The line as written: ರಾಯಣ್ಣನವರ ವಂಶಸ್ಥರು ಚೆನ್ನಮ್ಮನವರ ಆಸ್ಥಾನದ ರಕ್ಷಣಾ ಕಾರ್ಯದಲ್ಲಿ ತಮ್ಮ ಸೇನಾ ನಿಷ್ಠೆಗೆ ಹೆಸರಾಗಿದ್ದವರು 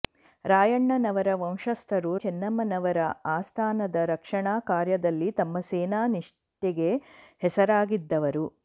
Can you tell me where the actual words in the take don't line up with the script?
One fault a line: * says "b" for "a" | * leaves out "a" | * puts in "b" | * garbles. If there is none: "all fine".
all fine